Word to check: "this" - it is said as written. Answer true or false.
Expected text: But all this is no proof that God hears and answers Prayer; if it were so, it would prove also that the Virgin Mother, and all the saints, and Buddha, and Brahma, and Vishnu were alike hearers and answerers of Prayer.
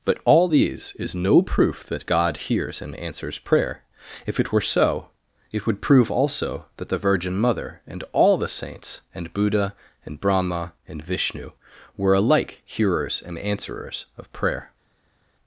false